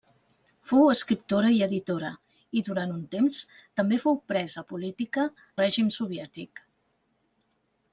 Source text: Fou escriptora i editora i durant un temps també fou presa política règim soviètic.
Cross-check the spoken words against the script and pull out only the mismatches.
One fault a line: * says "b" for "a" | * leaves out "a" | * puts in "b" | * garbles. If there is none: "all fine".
all fine